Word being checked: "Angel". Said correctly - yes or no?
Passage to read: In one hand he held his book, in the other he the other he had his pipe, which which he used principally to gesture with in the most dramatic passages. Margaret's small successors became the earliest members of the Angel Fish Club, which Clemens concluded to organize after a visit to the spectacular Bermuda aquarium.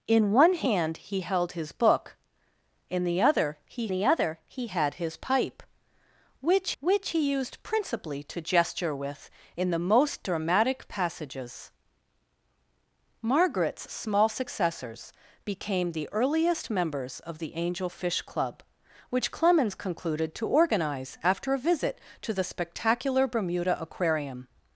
yes